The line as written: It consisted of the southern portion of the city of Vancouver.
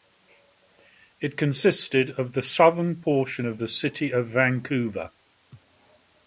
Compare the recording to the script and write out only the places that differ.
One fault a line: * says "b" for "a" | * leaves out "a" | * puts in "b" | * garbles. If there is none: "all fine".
all fine